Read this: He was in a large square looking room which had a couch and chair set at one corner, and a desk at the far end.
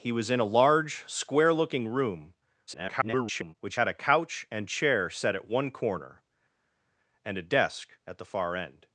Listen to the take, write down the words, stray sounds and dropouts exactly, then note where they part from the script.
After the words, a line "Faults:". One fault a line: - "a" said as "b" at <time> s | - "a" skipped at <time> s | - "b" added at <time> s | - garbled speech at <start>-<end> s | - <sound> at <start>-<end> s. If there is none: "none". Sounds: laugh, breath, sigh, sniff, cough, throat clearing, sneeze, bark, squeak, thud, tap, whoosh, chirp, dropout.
He was in a large square looking room [garbled] which had a couch and chair set at one corner, and a desk at the far end.
Faults:
- garbled speech at 2.7-3.6 s